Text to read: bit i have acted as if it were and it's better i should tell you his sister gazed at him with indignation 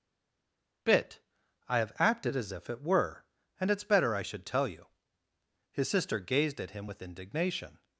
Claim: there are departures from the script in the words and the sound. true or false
false